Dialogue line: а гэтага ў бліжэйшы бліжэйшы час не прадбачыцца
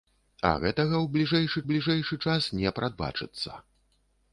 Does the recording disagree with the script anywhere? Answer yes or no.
no